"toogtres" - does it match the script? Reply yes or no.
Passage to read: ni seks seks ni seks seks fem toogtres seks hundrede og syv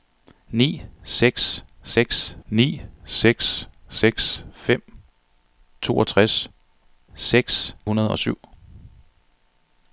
yes